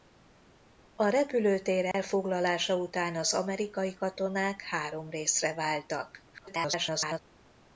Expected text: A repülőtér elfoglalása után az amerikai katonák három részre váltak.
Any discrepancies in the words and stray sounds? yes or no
yes